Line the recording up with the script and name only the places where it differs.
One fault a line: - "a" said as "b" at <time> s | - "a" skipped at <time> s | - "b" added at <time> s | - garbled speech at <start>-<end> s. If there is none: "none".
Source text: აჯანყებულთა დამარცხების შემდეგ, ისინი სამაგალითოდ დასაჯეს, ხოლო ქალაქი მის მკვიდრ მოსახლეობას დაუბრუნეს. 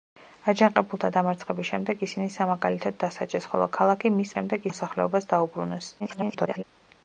- "მკვიდრ" said as "შემდეგ" at 4.3 s
- garbled speech at 6.0-6.6 s